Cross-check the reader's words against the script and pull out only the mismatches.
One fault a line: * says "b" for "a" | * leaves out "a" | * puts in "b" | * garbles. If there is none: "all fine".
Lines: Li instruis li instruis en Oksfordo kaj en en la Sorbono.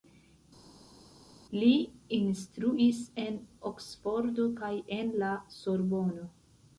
* leaves out "li instruis"
* leaves out "en"